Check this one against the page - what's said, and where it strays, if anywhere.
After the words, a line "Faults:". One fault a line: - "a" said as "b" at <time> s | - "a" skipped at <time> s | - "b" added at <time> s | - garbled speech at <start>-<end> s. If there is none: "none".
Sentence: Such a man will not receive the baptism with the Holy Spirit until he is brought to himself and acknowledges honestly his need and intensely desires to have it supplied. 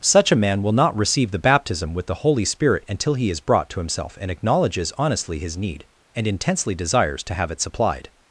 Such a man will not receive the baptism with the Holy Spirit until he is brought to himself and acknowledges honestly his need and intensely desires to have it supplied.
Faults:
none